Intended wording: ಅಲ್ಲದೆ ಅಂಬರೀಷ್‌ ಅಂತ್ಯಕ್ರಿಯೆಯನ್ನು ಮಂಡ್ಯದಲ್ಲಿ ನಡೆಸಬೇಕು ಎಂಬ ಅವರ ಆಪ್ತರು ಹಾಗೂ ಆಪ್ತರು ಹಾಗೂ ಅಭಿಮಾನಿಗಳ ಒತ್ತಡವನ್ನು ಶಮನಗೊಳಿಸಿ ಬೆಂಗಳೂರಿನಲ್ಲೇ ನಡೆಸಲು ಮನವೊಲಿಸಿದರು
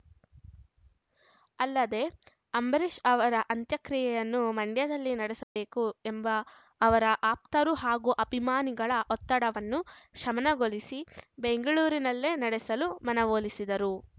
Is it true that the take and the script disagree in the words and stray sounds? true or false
true